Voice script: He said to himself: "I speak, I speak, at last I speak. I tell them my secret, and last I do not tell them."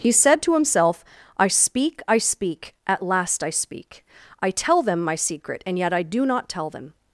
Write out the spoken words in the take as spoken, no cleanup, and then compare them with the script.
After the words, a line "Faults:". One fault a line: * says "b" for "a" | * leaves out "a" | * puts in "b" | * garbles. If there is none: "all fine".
He said to himself: "I speak, I speak, at last I speak. I tell them my secret, and yet I do not tell them."
Faults:
* says "yet" for "last"